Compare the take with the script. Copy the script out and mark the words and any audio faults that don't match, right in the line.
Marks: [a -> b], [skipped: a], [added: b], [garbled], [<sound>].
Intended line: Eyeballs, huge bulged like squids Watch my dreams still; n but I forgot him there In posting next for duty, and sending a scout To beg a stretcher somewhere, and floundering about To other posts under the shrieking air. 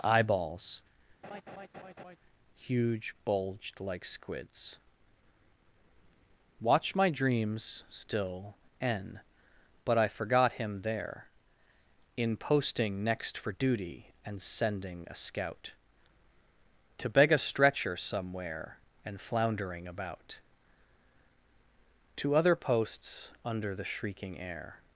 Eyeballs, [laugh] huge bulged like squids Watch my dreams still; n but I forgot him there In posting next for duty, and sending a scout To beg a stretcher somewhere, and floundering about To other posts under the shrieking air.